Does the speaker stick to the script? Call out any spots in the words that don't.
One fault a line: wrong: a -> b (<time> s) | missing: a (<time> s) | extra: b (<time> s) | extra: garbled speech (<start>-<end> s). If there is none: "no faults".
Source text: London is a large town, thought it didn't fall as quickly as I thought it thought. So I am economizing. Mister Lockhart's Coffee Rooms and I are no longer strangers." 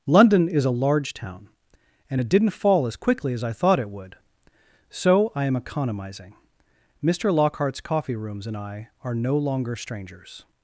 wrong: thought -> and (2.1 s)
wrong: thought -> would (3.9 s)